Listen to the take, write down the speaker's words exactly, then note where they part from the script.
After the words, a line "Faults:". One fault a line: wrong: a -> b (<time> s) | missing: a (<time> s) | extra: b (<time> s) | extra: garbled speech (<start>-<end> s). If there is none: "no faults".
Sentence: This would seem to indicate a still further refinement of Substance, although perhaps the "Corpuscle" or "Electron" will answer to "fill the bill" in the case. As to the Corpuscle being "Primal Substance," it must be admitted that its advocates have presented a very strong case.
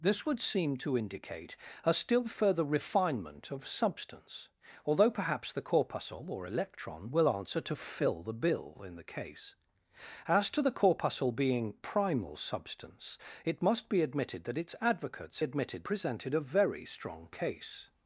This would seem to indicate a still further refinement of Substance, although perhaps the "Corpuscle" or "Electron" will answer to "fill the bill" in the case. As to the Corpuscle being "Primal Substance," it must be admitted that its advocates admitted presented a very strong case.
Faults:
wrong: have -> admitted (15.4 s)